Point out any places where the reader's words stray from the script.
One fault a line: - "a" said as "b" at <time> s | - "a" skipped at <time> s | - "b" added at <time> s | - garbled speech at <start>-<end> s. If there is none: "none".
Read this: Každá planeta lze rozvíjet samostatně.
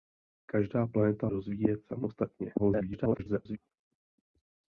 - "lze" skipped at 1.3 s
- garbled speech at 2.6-3.6 s